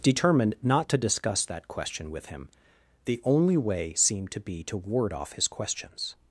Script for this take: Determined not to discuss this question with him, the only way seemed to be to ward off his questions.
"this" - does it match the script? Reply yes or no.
no